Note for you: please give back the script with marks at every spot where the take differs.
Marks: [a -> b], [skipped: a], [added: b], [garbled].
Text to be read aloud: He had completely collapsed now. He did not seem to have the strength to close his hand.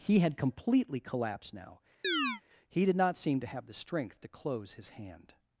He had completely collapsed now. He did not seem to have the strength to close his hand.